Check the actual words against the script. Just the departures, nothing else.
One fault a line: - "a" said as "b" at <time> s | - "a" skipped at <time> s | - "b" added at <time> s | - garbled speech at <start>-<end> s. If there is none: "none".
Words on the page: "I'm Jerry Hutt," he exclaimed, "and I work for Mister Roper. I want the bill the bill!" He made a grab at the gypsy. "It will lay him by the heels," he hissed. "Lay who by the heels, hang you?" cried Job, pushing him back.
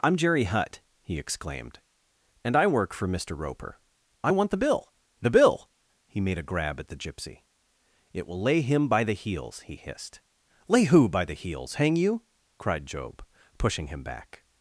none